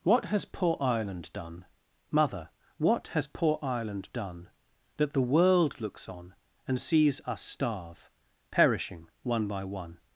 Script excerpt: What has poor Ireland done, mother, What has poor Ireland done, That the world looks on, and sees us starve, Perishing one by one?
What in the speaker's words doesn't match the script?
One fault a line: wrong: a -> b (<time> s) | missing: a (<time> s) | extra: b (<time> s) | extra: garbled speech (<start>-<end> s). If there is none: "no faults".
no faults